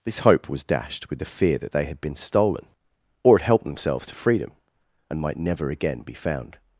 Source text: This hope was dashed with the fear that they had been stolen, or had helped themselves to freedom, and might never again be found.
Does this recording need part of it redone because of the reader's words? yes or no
no